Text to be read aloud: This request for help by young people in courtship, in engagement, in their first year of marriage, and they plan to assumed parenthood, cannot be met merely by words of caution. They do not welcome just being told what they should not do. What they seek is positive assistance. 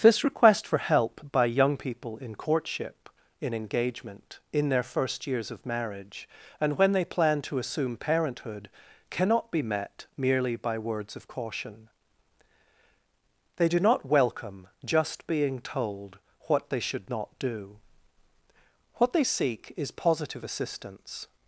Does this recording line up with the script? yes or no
no